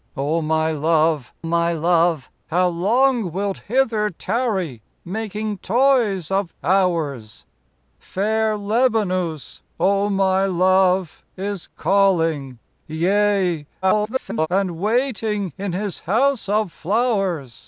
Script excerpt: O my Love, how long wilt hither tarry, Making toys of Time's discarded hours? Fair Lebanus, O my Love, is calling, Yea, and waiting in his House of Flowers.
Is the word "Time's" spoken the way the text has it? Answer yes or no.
no